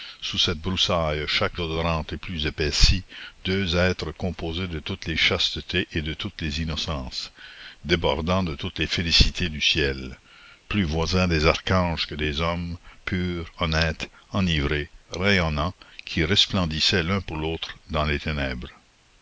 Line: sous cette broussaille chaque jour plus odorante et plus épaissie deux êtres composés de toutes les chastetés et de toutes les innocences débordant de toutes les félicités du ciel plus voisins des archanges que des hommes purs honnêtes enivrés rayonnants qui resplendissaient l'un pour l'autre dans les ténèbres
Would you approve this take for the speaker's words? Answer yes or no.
no